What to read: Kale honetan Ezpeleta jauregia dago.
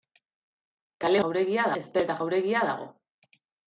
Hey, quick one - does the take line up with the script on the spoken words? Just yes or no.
no